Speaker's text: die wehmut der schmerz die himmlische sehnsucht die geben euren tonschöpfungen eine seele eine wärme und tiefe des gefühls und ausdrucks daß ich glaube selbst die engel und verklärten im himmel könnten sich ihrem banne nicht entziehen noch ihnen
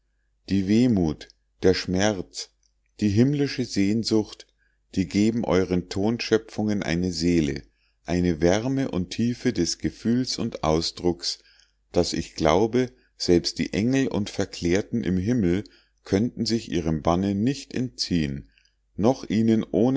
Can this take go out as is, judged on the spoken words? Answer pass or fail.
pass